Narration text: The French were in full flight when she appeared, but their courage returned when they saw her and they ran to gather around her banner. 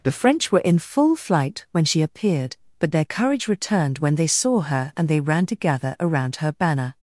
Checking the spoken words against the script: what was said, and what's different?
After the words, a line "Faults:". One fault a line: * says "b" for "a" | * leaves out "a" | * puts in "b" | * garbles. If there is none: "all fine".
The French were in full flight when she appeared, but their courage returned when they saw her and they ran to gather around her banner.
Faults:
all fine